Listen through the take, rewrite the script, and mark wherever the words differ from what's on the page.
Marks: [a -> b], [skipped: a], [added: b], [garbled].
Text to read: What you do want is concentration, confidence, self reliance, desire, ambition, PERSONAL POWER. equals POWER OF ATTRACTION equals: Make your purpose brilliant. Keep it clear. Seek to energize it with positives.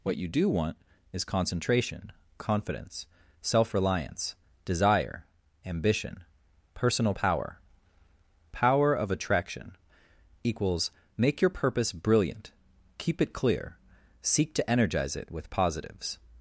What you do want is concentration, confidence, self reliance, desire, ambition, PERSONAL POWER. [skipped: equals] POWER OF ATTRACTION equals: Make your purpose brilliant. Keep it clear. Seek to energize it with positives.